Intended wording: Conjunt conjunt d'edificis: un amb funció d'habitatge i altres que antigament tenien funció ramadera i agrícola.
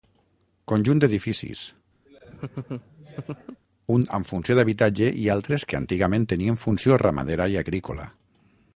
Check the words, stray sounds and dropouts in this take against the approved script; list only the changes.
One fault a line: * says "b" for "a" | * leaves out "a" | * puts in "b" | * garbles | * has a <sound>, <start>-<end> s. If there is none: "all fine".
* leaves out "conjunt"
* has a laugh, 2.1-3.6 s